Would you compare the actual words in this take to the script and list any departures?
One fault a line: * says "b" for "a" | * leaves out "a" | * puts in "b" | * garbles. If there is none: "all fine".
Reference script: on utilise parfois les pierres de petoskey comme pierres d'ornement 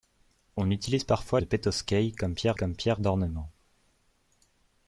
* says "de petoskey comme pierres" for "les pierres de petoskey"